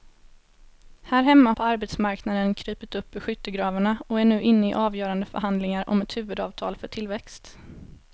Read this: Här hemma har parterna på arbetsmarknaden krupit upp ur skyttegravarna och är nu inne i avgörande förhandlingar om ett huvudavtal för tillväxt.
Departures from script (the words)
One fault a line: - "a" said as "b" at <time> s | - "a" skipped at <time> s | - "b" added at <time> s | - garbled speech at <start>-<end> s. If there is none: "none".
- "har parterna" skipped at 1.5 s